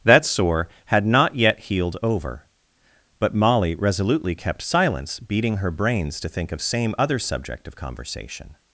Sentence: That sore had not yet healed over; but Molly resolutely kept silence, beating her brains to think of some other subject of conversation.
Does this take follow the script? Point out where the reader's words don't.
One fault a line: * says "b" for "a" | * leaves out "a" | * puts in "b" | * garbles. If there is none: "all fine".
* says "same" for "some"